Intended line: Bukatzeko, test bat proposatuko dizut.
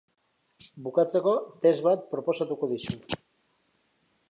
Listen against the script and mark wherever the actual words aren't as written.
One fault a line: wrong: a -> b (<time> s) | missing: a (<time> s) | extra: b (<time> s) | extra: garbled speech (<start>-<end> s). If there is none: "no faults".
no faults